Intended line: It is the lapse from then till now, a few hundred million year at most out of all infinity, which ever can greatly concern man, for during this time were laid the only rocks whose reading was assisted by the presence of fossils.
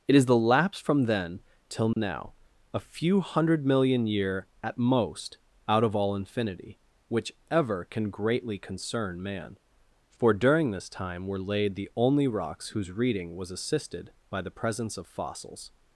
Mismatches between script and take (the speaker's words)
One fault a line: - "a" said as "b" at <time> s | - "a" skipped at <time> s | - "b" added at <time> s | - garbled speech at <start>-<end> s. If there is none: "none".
none